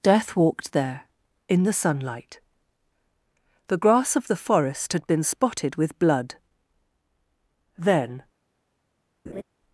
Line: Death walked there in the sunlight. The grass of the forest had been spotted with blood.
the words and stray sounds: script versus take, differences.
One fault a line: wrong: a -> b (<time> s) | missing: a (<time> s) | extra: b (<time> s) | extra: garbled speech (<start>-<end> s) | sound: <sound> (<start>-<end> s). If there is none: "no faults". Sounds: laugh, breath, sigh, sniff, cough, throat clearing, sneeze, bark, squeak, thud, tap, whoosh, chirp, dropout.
extra: Then (7.8 s)
sound: laugh (9.3-9.4 s)